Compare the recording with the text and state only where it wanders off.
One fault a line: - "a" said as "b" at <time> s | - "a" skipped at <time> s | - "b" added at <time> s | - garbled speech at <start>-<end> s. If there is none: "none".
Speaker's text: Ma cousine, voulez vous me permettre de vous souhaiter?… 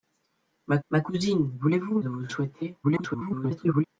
- "ma" added at 0.9 s
- "me permettre" skipped at 2.0 s
- garbled speech at 2.8-3.8 s